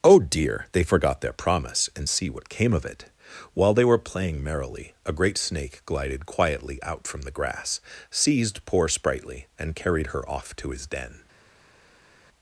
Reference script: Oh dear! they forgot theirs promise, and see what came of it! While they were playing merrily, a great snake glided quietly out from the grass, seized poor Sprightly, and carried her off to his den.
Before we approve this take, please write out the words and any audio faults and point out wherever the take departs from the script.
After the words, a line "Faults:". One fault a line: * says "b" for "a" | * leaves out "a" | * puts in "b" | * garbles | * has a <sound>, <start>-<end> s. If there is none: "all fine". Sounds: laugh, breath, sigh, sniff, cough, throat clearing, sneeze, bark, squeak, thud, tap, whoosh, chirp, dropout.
Oh dear! they forgot their promise, and see what came of it! While they were playing merrily, a great snake glided quietly out from the grass, seized poor Sprightly, and carried her off to his den.
Faults:
* says "their" for "theirs"